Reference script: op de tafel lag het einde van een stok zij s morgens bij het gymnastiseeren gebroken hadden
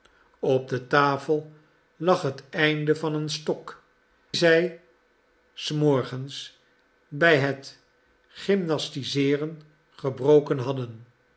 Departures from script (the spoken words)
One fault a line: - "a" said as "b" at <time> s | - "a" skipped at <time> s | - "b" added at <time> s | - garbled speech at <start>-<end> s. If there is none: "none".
none